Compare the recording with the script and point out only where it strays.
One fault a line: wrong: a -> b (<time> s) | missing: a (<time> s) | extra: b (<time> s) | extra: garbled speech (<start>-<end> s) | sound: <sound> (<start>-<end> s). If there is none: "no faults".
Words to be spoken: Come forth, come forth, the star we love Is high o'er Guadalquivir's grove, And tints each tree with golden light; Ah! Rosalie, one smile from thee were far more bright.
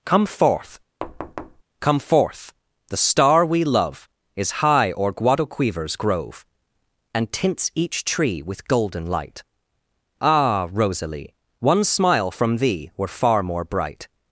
sound: thud (1.0-1.6 s)